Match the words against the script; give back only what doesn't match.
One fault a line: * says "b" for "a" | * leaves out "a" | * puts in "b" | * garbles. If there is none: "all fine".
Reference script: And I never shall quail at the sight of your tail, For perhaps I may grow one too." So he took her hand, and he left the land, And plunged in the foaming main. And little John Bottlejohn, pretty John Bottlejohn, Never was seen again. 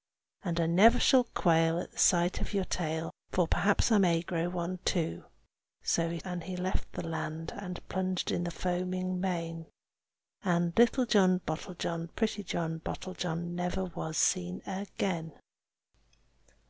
* leaves out "took her hand"